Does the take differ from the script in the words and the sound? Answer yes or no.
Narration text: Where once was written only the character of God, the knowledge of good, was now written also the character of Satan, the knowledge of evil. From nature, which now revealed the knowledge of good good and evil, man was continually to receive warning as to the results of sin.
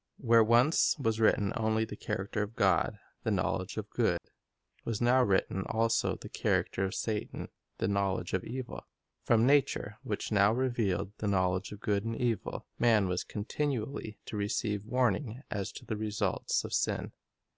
yes